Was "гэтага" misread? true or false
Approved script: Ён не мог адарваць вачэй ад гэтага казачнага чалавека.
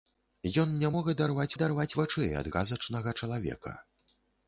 true